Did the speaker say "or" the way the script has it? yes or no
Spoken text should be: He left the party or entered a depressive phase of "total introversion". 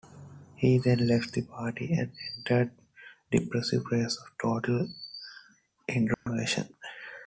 no